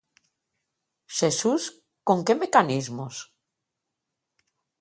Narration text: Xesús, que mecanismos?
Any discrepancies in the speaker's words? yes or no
yes